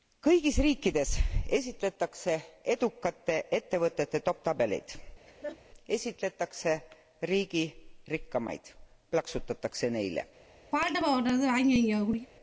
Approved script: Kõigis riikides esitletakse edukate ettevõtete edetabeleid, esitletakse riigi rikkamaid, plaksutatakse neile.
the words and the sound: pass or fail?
fail